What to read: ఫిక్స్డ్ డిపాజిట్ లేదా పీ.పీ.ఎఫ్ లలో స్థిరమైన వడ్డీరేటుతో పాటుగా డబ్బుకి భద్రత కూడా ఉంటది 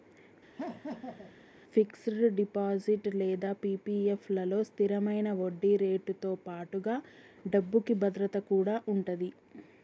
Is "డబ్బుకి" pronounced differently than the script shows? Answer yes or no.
no